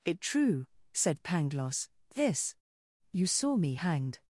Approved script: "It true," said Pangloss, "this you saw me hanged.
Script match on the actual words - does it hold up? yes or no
yes